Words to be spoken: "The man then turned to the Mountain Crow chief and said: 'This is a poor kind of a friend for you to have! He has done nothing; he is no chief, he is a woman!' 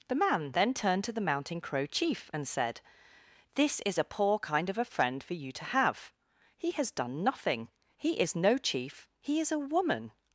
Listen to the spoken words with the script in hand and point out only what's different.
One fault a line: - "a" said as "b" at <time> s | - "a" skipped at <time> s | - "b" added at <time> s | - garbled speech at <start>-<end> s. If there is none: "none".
none